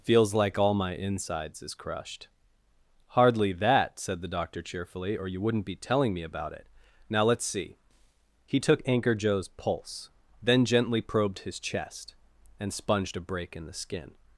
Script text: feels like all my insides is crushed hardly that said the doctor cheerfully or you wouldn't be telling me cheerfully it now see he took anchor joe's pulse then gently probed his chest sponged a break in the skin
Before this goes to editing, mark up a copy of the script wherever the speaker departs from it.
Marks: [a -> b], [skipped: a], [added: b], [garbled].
feels like all my insides is crushed hardly that said the doctor cheerfully or you wouldn't be telling me [cheerfully -> about] it now [added: let's] see he took anchor joe's pulse then gently probed his chest [added: and] sponged a break in the skin